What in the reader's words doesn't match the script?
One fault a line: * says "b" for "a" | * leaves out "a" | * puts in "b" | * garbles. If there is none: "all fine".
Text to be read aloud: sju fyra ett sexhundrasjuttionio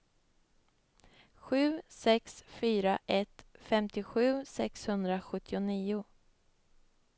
* puts in "sex"
* puts in "femtiosju"